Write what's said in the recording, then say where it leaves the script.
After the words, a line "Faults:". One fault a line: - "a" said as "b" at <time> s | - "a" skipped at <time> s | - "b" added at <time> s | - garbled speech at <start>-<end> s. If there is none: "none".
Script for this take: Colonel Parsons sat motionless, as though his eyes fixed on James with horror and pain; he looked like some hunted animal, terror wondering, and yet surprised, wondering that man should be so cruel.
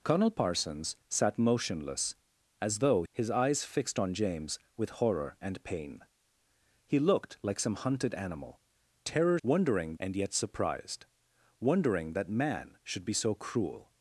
Colonel Parsons sat motionless, as though his eyes fixed on James with horror and pain; he looked like some hunted animal, terror wondering, and yet surprised, wondering that man should be so cruel.
Faults:
none